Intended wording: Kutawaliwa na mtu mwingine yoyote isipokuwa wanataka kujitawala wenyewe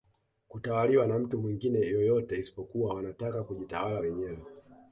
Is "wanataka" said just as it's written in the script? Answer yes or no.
yes